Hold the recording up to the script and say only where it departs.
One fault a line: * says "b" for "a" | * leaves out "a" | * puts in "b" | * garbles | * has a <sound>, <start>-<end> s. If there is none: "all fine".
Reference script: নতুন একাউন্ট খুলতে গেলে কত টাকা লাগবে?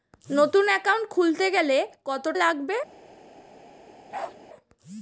* leaves out "টাকা"
* has a bark, 4.1-4.4 s